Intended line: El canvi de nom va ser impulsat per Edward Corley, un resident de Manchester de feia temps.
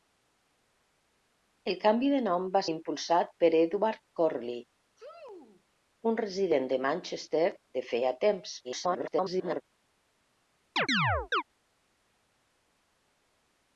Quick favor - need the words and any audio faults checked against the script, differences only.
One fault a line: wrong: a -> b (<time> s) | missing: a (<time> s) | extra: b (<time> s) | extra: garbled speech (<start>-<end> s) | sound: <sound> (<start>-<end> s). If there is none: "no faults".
missing: ser (2.6 s)
sound: sneeze (5.0-5.6 s)
extra: garbled speech (8.6-9.6 s)
sound: chirp (10.8-11.4 s)